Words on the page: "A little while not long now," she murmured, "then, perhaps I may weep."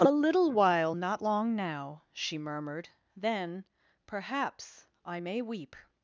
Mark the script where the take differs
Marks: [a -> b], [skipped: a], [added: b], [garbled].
"A little while not long now," she murmured, "then, perhaps I may weep."